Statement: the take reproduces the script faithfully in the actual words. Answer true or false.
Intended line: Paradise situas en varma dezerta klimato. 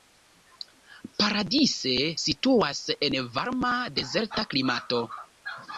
true